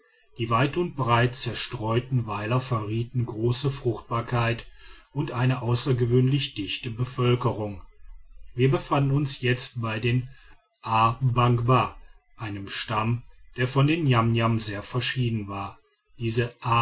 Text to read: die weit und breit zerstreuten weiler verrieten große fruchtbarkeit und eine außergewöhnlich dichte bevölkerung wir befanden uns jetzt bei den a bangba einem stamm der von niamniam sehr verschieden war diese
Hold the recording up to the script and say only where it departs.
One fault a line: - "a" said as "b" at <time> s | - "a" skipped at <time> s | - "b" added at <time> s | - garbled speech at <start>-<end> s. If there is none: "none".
- "den" added at 13.9 s